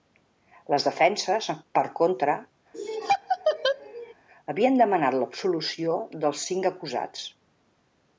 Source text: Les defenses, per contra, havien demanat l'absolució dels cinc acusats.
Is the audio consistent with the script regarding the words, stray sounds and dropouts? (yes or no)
no